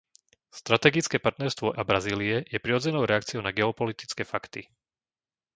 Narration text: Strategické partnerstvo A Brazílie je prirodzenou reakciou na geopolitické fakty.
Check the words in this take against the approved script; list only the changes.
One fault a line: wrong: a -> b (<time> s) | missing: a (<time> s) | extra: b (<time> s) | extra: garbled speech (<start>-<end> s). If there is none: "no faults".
no faults